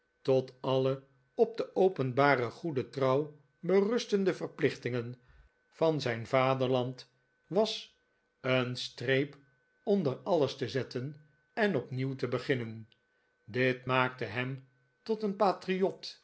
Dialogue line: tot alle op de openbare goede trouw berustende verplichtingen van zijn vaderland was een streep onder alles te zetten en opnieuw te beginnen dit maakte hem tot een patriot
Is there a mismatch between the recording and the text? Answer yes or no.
no